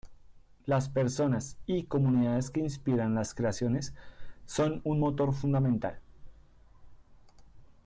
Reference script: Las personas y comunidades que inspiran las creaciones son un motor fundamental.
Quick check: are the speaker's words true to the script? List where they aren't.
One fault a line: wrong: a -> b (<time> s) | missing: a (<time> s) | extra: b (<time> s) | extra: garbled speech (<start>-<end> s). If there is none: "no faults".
no faults